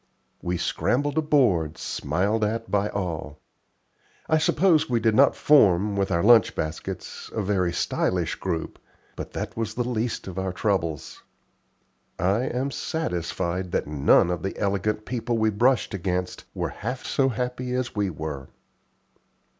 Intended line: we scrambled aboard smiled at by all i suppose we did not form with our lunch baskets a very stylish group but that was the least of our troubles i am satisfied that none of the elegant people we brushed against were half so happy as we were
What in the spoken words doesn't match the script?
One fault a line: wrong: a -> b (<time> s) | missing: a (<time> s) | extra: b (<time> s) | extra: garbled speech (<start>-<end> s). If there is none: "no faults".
no faults